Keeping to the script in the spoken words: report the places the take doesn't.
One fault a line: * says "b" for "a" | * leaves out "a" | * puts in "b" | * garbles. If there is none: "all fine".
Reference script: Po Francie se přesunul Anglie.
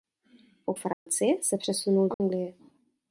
all fine